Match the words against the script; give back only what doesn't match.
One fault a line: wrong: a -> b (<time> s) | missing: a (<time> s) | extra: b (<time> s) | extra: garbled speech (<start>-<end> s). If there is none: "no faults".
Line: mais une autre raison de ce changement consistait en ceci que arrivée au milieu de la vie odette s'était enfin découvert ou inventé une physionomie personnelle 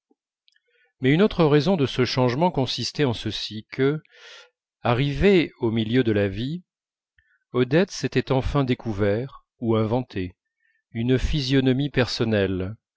no faults